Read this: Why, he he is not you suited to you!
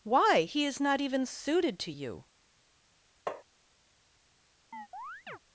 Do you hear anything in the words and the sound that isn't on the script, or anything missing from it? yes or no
yes